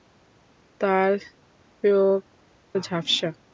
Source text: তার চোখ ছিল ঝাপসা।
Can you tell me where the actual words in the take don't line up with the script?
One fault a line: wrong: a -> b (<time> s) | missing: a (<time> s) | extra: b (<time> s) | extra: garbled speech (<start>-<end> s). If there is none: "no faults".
missing: ছিল (2.2 s)